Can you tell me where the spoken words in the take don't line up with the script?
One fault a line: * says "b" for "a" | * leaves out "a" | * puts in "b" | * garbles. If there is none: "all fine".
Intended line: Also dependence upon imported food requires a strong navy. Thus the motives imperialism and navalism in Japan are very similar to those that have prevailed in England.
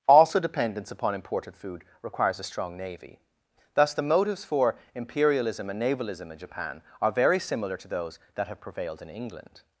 * puts in "for"